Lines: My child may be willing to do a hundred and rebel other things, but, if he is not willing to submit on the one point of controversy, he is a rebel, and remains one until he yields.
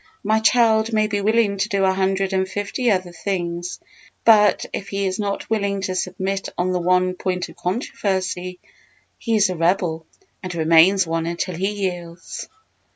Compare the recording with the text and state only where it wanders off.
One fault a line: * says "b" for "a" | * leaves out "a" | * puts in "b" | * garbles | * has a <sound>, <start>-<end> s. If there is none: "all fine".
* says "fifty" for "rebel"